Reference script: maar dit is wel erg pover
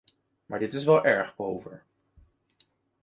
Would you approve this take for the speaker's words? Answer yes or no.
yes